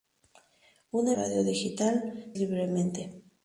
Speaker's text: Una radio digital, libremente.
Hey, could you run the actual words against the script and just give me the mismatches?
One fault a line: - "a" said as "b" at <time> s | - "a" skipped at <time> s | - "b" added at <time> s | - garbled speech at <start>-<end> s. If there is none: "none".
none